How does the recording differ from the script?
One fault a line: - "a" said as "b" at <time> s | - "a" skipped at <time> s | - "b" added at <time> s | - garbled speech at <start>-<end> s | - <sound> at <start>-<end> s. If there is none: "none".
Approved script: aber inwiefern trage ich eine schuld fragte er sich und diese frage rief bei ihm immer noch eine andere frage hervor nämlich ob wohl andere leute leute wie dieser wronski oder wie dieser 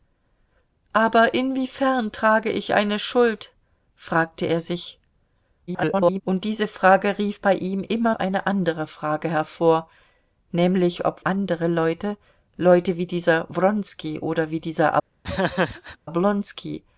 - garbled speech at 5.7-6.2 s
- "noch" skipped at 8.1 s
- "wohl" skipped at 11.2 s
- laugh at 15.2-16.0 s